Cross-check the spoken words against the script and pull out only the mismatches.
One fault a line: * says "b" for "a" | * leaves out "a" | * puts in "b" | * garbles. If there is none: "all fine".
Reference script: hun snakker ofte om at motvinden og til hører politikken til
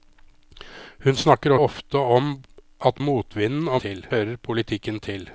all fine